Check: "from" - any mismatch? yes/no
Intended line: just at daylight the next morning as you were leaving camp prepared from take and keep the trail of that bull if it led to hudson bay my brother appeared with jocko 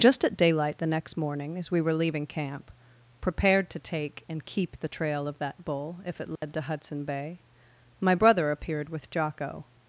yes